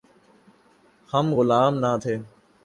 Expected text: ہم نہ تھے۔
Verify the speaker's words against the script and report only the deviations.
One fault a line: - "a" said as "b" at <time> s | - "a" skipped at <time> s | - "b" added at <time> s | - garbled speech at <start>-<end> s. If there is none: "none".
- "غلام" added at 1.4 s